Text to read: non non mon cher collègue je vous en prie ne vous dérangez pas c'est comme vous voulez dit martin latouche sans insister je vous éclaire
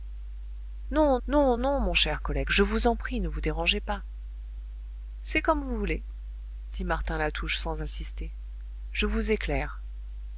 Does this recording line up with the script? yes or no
no